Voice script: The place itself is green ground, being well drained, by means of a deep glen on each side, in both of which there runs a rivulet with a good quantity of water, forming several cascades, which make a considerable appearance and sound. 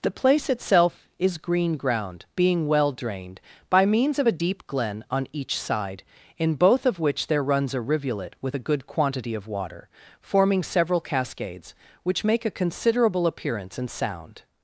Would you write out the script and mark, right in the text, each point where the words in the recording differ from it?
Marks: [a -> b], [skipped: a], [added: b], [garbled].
The place itself is green ground, being well drained, by means of a deep glen on each side, in both of which there runs a rivulet with a good quantity of water, forming several cascades, which make a considerable appearance and sound.